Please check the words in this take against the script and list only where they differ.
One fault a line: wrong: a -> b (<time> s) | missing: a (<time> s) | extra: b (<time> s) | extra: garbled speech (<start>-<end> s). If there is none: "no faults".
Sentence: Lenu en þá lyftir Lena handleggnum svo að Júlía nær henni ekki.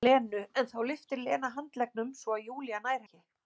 missing: henni (3.0 s)